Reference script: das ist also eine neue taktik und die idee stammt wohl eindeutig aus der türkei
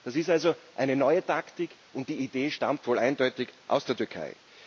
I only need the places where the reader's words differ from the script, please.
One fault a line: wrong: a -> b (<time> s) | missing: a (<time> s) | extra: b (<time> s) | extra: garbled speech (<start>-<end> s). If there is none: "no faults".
no faults